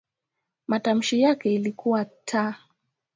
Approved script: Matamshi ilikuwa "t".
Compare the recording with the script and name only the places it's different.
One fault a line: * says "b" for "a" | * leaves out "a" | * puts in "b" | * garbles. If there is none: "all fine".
* puts in "yake"